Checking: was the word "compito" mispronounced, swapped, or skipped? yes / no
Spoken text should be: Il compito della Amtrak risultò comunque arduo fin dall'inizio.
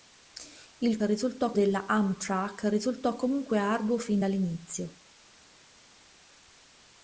yes